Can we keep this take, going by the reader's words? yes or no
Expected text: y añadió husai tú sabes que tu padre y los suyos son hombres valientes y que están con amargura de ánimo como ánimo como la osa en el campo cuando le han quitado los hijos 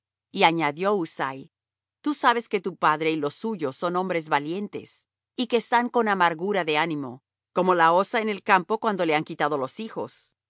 no